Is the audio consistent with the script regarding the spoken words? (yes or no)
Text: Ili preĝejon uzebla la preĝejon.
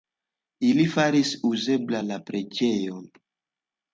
no